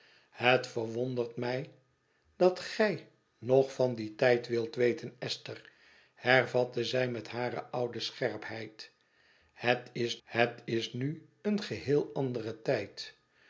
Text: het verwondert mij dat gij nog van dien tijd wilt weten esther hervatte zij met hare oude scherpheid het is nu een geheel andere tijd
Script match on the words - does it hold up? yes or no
no